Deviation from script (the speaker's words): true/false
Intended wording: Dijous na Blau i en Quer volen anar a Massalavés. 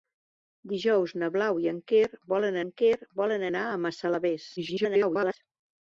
true